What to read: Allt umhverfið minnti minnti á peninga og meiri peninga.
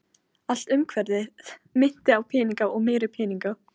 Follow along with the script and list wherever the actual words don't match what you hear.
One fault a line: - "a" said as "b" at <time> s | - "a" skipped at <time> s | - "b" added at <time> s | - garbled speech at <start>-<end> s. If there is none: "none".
- "minnti" skipped at 2.2 s